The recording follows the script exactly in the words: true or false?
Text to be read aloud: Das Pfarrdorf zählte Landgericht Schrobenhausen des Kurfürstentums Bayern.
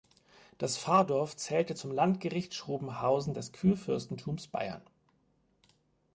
false